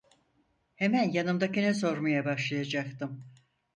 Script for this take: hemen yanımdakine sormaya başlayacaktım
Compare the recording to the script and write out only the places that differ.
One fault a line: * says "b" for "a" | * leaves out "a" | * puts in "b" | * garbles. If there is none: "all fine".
all fine